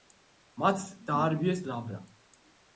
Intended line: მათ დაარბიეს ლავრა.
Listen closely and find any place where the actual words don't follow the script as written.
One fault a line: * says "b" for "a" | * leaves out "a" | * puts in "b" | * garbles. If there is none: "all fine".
all fine